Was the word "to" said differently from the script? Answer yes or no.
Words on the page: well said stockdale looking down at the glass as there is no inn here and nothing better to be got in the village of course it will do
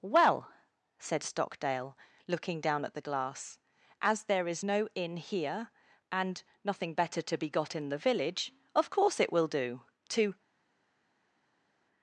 no